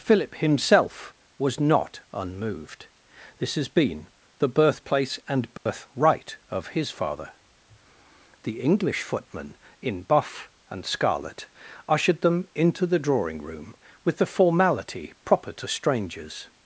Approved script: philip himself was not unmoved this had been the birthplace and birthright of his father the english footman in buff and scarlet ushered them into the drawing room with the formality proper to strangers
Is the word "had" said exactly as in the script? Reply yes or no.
no